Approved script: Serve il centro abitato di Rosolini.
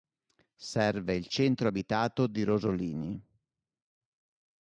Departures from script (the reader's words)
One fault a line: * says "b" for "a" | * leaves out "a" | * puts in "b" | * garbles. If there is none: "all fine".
all fine